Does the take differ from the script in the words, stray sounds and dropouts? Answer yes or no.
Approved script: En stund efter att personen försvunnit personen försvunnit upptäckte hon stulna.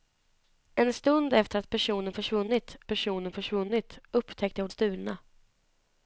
no